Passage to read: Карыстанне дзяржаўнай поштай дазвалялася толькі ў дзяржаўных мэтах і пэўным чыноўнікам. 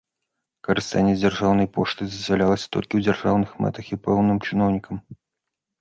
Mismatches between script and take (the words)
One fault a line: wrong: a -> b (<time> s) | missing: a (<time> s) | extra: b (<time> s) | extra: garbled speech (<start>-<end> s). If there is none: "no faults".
no faults